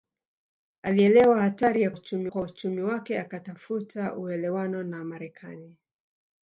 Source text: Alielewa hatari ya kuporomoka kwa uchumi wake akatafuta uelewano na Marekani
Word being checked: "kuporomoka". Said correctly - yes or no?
no